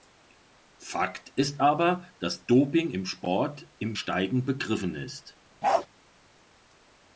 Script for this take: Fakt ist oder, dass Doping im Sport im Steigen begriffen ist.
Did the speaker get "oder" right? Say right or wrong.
wrong